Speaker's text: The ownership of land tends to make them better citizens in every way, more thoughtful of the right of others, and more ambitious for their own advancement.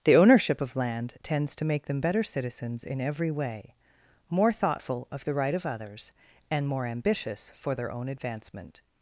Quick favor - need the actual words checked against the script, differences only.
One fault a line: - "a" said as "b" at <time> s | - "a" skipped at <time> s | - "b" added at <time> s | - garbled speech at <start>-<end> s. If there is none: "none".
none